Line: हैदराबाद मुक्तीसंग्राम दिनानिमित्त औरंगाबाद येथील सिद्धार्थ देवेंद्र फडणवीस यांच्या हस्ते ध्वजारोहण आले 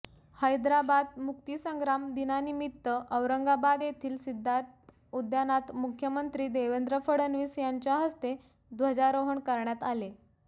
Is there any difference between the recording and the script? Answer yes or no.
yes